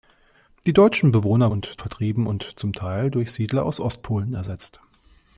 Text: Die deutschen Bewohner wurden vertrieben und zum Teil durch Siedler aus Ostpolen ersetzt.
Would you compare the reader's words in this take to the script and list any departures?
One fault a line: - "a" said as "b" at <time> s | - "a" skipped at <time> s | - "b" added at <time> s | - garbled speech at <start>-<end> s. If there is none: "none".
- "wurden" said as "und" at 1.5 s